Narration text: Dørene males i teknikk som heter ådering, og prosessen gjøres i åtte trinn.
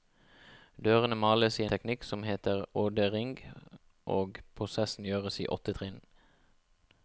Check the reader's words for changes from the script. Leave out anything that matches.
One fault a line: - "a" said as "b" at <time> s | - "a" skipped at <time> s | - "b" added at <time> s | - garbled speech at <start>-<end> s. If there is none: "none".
none